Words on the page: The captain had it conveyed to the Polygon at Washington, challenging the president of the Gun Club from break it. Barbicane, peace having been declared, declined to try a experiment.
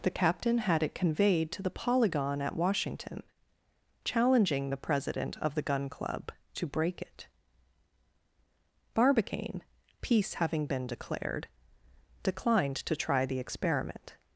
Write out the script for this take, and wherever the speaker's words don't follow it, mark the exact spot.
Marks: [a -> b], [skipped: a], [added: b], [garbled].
The captain had it conveyed to the Polygon at Washington, challenging the president of the Gun Club [from -> to] break it. Barbicane, peace having been declared, declined to try [a -> the] experiment.